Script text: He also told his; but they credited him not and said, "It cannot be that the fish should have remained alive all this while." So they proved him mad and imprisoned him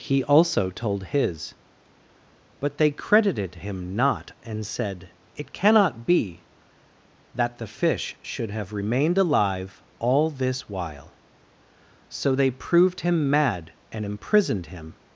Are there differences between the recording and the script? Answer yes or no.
no